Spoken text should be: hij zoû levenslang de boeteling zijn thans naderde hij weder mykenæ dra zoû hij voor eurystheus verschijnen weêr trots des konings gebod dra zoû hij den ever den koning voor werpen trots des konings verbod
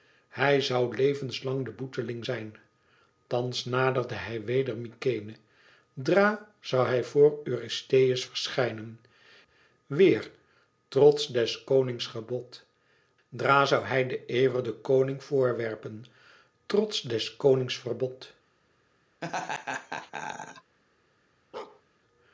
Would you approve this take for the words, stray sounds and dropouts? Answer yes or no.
no